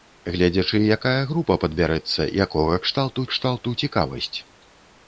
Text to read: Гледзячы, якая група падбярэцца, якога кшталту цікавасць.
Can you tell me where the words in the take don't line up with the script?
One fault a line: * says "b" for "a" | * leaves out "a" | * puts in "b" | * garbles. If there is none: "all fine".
* puts in "кшталту"